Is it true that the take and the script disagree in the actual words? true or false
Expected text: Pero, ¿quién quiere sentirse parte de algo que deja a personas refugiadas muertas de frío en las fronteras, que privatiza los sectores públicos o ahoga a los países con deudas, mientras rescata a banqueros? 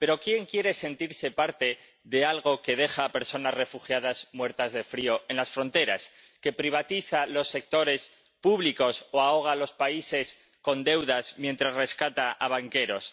false